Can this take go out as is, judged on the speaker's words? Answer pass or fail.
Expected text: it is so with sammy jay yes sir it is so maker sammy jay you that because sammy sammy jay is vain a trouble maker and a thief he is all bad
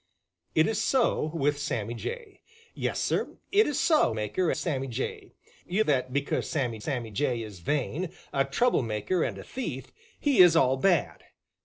pass